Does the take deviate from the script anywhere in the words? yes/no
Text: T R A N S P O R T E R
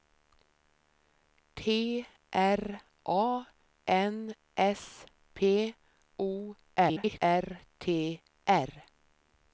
yes